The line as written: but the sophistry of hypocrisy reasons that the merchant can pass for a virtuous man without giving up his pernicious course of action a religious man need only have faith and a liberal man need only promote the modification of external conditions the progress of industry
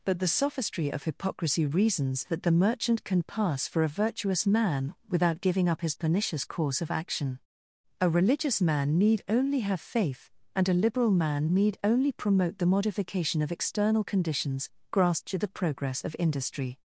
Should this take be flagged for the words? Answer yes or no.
yes